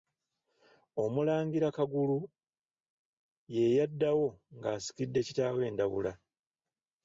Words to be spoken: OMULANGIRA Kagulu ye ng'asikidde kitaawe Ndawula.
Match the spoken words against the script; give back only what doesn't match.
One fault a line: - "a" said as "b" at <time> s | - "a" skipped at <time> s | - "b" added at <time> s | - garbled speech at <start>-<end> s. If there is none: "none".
- "yaddawo" added at 3.8 s